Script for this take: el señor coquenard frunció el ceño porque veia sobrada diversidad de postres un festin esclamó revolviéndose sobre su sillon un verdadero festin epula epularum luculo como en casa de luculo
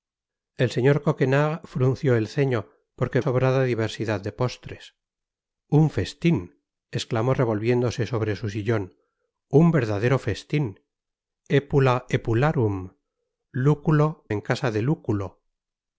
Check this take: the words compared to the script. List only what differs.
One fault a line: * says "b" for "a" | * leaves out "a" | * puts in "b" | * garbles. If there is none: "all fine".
* leaves out "veia"
* leaves out "como"